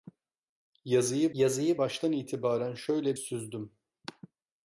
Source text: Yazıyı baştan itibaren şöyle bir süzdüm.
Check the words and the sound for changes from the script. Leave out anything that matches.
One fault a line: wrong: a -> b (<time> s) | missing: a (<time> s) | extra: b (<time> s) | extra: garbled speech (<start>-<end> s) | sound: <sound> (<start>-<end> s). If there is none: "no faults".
extra: yazıyı (1.3 s)
missing: bir (3.2 s)